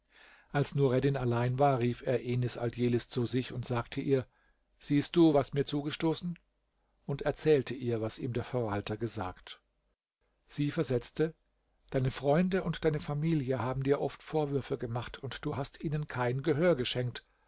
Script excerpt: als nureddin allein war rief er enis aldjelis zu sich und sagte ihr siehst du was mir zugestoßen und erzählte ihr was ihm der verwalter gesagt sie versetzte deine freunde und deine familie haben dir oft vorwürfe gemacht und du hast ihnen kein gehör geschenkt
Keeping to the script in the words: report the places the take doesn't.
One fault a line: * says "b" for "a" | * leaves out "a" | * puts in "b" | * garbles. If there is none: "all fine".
all fine